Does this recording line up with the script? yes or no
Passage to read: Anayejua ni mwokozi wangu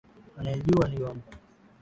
no